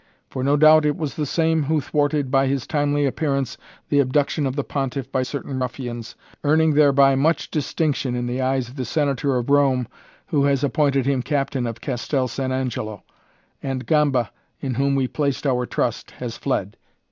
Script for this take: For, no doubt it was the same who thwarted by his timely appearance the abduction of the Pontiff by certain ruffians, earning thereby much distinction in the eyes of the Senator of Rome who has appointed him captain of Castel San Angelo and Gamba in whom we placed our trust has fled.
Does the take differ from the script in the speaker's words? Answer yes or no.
no